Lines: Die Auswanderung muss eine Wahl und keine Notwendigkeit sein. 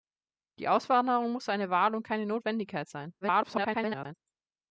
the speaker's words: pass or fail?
fail